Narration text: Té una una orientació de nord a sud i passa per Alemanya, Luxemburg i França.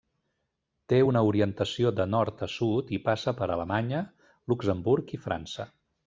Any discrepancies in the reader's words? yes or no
yes